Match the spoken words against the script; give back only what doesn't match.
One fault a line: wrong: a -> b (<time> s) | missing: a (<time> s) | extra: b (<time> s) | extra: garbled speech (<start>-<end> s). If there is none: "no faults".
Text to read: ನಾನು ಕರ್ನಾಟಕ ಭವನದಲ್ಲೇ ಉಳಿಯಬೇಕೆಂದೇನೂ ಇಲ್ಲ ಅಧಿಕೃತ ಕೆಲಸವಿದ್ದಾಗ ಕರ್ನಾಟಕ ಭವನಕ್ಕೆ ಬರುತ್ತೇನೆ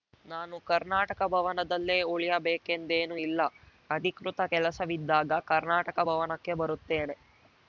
no faults